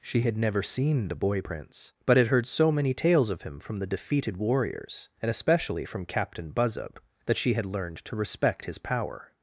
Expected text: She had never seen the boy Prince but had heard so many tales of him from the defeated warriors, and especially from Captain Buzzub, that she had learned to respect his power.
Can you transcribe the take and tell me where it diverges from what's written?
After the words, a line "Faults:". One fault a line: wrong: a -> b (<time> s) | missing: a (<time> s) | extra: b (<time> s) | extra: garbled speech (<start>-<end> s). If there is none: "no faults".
She had never seen the boy Prince but had heard so many tales of him from the defeated warriors, and especially from Captain Buzzub, that she had learned to respect his power.
Faults:
no faults